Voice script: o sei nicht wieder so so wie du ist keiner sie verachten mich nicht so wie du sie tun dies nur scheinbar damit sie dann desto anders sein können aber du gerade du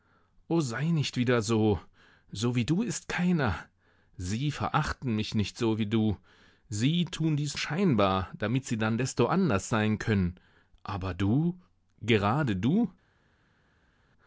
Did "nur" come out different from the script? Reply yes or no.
yes